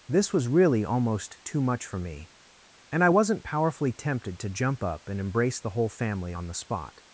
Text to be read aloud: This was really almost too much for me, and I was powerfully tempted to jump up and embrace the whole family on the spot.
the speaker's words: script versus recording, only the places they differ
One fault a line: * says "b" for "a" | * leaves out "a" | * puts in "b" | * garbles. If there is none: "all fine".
* says "wasn't" for "was"